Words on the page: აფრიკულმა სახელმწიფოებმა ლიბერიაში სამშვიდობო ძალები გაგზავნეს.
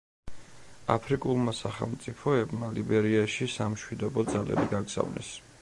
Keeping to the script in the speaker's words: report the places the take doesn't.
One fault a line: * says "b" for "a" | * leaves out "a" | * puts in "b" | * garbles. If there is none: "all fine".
all fine